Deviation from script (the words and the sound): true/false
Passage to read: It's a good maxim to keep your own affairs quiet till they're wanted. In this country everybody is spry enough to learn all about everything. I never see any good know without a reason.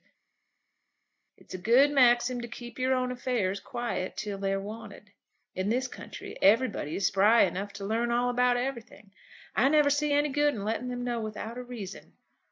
true